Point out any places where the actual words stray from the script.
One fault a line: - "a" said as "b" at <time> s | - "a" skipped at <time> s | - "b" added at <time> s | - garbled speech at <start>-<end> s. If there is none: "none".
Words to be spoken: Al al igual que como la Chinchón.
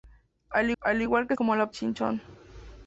none